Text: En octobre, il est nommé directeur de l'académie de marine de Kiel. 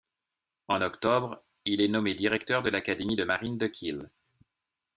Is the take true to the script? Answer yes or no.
yes